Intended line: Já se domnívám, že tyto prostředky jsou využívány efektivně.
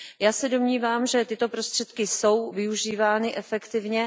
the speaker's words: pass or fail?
pass